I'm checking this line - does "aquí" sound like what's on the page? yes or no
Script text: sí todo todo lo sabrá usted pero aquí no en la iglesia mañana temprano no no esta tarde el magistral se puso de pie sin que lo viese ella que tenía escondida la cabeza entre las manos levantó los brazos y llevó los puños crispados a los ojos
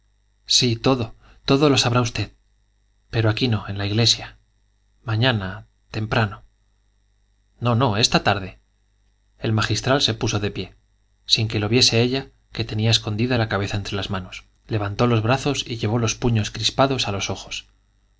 yes